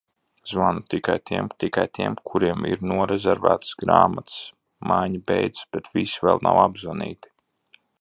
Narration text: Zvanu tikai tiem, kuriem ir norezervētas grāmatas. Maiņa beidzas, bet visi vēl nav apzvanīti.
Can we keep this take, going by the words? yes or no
no